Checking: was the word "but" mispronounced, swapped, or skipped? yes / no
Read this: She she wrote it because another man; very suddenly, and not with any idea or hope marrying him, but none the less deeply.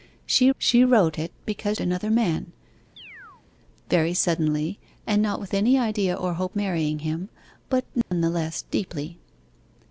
no